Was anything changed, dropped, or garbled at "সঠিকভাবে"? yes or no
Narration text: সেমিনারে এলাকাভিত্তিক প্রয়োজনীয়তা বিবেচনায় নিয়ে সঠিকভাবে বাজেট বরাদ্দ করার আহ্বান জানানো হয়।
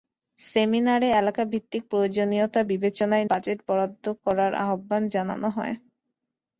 yes